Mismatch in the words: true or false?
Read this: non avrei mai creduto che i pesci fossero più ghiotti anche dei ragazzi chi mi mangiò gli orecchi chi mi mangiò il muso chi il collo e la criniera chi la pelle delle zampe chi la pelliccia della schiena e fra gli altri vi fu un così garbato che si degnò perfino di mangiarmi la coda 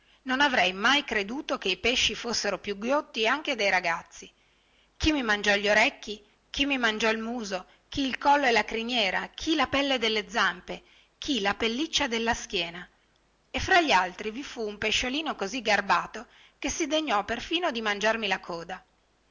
true